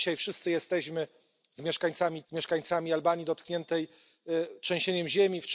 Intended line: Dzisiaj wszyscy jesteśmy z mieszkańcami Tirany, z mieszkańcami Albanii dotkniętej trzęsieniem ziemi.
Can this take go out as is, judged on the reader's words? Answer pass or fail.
fail